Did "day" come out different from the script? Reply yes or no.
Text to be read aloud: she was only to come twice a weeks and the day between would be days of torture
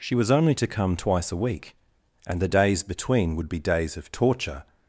yes